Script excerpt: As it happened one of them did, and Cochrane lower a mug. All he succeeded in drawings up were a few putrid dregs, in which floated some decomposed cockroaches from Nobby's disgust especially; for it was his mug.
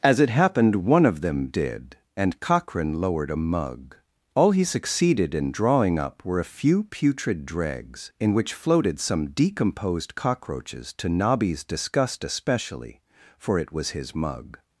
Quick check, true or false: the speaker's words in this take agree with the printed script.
false